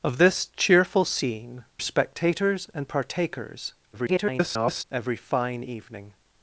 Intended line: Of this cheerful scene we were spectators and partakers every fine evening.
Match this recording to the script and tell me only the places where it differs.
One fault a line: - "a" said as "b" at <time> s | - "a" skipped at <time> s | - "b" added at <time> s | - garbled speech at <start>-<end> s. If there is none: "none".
- "we were" skipped at 1.6 s
- garbled speech at 3.9-4.8 s